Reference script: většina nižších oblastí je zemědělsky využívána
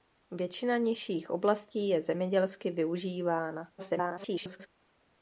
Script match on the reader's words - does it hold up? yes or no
no